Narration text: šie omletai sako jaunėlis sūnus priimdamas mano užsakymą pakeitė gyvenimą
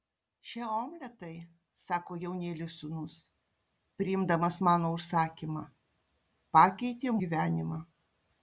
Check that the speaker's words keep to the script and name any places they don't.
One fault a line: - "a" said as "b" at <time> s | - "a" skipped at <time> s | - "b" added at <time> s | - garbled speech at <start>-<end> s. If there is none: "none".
none